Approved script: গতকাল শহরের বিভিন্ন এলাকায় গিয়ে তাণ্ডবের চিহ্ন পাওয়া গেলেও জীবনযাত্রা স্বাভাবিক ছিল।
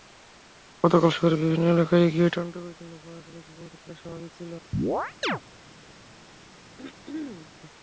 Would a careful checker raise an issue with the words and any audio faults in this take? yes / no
yes